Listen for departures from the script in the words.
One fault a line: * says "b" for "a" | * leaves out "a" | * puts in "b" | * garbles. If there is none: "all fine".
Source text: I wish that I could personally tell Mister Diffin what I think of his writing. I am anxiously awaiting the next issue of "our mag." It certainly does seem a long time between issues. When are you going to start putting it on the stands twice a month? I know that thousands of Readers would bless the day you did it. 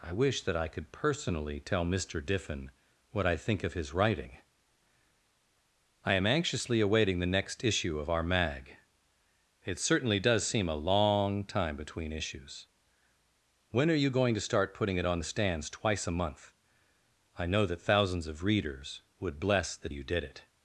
* leaves out "day"